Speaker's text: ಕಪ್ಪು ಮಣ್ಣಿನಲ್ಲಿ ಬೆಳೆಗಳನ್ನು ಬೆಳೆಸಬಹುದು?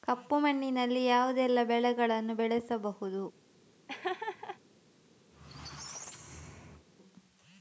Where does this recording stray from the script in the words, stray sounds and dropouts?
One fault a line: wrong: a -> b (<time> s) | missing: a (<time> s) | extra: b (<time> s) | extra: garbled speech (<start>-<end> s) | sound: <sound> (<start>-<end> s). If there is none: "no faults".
extra: ಯಾವುದೆಲ್ಲ (1.1 s)
sound: laugh (3.9-4.6 s)
sound: squeak (5.3-6.9 s)